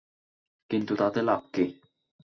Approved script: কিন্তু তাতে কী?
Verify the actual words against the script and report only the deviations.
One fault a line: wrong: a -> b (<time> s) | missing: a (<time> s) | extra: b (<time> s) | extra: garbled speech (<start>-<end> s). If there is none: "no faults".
extra: লাভ (1.2 s)